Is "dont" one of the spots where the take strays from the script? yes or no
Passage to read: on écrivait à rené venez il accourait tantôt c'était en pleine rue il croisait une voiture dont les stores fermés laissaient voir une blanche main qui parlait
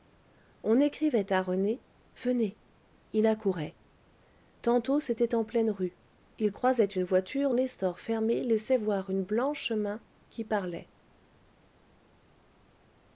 yes